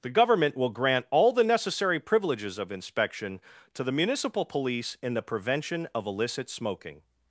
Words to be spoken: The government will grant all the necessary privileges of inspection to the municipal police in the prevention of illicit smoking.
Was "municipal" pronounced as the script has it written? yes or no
yes